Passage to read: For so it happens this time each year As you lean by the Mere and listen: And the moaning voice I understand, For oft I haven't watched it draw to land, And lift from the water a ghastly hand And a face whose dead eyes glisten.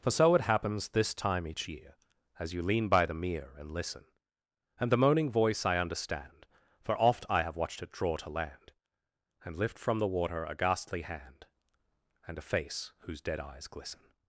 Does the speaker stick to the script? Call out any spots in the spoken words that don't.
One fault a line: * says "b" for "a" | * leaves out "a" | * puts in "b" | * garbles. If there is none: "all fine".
* says "have" for "haven't"